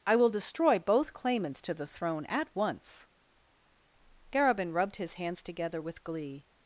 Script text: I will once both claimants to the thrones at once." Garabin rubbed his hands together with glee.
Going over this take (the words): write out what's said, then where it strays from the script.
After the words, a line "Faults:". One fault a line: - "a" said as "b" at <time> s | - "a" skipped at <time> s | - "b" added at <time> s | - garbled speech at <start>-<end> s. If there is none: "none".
I will destroy both claimants to the throne at once." Garabin rubbed his hands together with glee.
Faults:
- "once" said as "destroy" at 0.3 s
- "thrones" said as "throne" at 1.9 s